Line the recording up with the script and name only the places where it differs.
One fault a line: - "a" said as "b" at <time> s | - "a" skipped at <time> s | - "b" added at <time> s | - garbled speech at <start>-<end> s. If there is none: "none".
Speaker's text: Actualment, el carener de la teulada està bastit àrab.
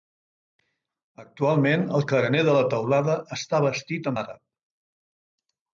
none